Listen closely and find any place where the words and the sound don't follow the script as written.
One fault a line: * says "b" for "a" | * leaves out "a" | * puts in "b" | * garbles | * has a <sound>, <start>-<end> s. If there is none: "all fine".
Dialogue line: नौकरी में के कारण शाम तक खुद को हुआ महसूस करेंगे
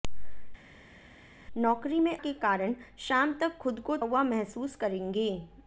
all fine